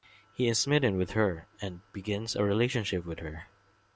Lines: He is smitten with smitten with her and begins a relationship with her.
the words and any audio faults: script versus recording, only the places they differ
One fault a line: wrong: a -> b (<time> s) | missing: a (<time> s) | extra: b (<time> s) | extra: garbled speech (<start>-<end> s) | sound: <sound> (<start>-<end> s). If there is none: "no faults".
missing: smitten with (1.1 s)